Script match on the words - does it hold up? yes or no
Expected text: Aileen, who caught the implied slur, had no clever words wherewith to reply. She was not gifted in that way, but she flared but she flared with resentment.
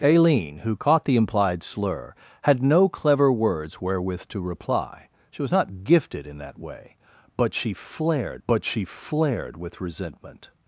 yes